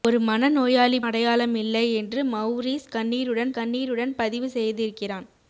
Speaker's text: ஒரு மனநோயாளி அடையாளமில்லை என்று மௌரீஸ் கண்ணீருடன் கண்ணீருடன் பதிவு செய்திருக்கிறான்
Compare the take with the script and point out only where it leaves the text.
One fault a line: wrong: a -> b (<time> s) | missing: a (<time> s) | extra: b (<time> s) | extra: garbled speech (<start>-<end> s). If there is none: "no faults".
no faults